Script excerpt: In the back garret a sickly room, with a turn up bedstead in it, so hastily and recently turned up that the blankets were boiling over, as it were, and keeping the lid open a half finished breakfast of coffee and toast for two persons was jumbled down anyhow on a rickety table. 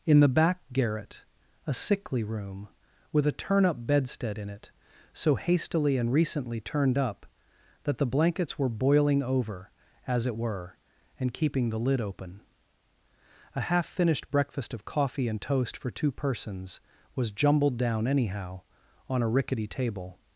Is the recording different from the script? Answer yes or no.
no